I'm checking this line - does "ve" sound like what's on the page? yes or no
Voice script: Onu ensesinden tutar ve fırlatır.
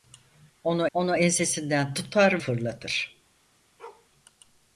no